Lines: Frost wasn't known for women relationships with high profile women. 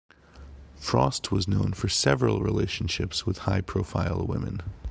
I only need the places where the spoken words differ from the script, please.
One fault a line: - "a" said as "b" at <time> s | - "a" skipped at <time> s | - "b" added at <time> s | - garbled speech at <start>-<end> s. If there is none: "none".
- "wasn't" said as "was" at 1.3 s
- "women" said as "several" at 1.9 s